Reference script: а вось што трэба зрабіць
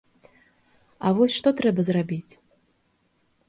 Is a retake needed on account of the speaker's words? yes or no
no